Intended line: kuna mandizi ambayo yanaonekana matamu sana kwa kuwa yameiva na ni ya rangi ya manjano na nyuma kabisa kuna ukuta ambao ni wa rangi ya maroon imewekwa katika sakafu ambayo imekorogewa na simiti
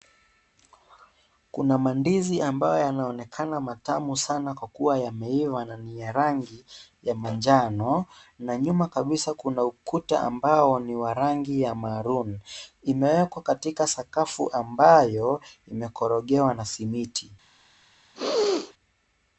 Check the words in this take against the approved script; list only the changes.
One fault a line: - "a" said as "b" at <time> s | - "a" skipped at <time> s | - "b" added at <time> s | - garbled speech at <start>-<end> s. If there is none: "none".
none